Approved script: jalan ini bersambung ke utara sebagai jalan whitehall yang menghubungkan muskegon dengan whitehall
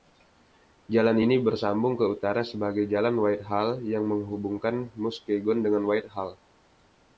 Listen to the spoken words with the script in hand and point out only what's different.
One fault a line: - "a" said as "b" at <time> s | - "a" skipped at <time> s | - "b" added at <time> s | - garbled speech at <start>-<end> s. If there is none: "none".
none